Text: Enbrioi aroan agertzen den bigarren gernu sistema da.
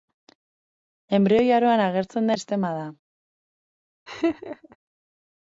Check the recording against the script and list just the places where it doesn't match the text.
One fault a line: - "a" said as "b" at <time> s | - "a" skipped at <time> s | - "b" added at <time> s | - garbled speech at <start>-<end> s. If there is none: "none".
- "den bigarren gernu" skipped at 2.4 s